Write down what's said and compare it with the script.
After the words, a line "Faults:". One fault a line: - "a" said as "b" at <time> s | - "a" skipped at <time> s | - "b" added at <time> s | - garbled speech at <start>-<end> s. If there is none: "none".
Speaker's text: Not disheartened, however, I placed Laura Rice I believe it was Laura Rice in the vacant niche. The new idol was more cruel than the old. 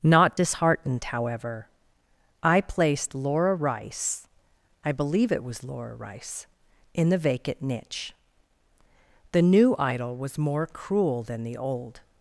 Not disheartened, however, I placed Laura Rice I believe it was Laura Rice in the vacant niche. The new idol was more cruel than the old.
Faults:
none